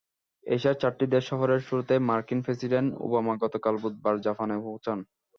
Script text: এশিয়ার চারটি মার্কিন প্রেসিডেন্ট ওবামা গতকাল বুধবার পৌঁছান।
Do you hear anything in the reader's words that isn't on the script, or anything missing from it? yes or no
yes